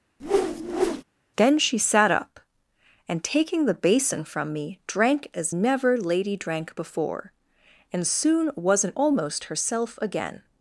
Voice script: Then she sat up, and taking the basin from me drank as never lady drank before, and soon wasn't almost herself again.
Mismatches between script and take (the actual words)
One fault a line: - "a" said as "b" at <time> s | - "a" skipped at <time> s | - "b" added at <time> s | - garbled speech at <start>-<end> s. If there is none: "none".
none